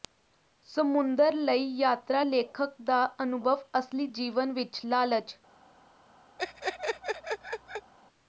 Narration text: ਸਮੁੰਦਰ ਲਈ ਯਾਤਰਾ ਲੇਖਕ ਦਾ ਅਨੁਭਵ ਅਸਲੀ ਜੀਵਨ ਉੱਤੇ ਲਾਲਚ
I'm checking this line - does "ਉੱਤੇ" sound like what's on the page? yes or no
no